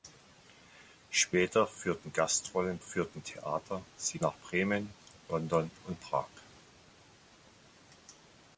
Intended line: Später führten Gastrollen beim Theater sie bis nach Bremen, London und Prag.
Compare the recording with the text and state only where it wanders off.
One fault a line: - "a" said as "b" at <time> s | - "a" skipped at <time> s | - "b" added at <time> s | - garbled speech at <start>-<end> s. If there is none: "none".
- "beim" said as "führten" at 2.8 s
- "bis" skipped at 4.2 s